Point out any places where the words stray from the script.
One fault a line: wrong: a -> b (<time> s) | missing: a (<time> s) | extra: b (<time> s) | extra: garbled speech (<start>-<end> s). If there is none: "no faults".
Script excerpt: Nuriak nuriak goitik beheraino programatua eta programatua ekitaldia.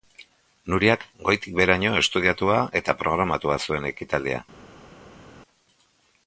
missing: nuriak (1.0 s)
wrong: programatua -> estudiatua (2.0 s)
extra: zuen (3.7 s)